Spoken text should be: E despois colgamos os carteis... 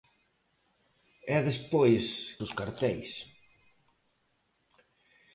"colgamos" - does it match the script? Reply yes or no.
no